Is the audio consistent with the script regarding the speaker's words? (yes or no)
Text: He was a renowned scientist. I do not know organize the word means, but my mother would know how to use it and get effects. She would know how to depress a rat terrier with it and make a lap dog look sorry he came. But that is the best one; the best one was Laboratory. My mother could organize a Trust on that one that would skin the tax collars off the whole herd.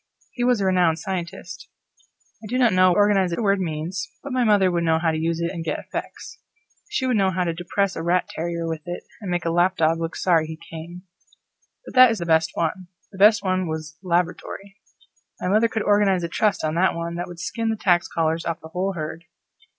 yes